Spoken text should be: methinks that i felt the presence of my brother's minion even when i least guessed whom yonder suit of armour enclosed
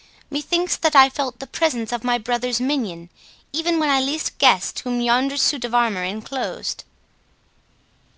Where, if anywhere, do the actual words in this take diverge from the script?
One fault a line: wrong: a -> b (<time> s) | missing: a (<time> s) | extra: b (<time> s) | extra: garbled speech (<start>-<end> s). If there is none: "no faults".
no faults